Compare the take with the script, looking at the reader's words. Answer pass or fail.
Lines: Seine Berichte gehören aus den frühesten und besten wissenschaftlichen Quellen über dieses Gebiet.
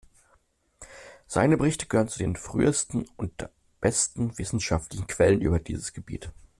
fail